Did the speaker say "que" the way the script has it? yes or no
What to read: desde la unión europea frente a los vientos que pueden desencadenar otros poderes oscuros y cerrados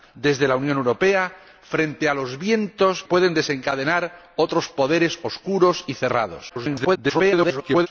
no